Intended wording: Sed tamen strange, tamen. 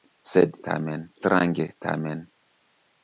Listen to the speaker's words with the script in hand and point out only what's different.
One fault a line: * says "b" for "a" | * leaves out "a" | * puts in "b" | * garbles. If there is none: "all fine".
all fine